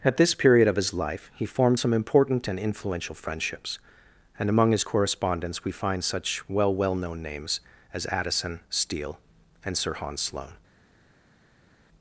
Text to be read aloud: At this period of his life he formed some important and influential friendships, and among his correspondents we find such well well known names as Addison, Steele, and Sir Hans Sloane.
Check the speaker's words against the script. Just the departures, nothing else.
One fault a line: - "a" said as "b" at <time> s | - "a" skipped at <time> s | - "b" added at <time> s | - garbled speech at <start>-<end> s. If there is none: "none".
none